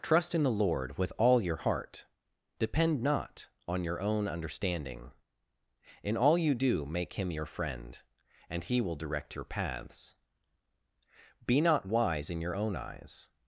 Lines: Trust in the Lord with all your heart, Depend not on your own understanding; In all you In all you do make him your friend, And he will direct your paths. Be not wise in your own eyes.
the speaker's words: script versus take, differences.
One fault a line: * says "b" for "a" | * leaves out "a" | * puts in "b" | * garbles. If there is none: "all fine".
* leaves out "In all you"